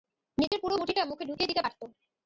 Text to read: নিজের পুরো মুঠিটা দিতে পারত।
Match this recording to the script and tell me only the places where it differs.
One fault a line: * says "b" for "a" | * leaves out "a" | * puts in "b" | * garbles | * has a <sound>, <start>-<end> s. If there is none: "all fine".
* has a dropout, 0.5-0.5 s
* puts in "মুখে ঢুকিয়ে"